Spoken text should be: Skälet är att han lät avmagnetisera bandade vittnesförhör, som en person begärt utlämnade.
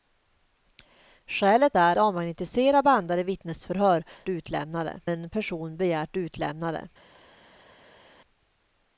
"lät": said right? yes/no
no